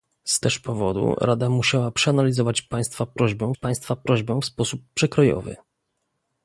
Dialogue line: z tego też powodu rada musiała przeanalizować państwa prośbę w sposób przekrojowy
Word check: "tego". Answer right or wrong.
wrong